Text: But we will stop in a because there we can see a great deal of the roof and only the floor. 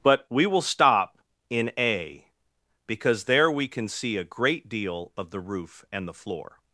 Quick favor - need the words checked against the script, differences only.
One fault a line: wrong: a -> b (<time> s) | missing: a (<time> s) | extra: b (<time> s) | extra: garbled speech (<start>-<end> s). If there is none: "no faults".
missing: only (6.1 s)